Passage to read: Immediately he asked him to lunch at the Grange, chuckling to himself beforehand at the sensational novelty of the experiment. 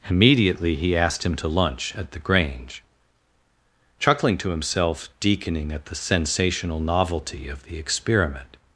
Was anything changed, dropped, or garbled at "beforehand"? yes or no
yes